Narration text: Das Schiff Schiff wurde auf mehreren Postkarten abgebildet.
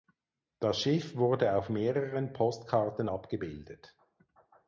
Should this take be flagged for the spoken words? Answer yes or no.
yes